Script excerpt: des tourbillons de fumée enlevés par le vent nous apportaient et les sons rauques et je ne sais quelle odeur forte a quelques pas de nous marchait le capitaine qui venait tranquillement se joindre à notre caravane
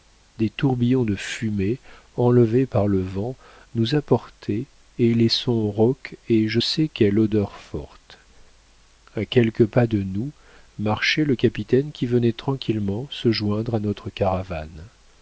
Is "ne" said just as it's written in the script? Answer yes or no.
no